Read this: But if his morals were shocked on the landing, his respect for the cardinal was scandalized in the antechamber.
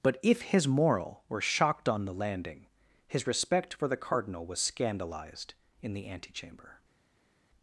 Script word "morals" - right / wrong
wrong